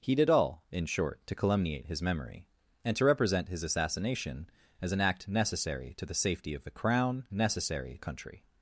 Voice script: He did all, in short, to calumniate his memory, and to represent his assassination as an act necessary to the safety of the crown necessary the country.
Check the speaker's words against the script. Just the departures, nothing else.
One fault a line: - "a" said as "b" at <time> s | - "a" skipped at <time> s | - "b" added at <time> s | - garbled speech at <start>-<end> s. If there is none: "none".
none